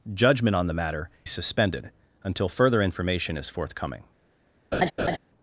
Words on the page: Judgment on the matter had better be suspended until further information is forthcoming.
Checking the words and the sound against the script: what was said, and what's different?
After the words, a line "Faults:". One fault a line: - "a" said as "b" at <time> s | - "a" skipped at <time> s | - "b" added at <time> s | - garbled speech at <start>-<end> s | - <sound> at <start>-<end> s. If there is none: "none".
Judgment on the matter suspended until further information is forthcoming.
Faults:
- "had better be" skipped at 1.1 s
- laugh at 4.7-5.2 s